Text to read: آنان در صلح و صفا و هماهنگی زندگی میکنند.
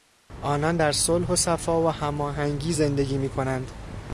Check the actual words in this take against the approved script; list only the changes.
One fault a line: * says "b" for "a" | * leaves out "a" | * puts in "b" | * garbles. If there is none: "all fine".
all fine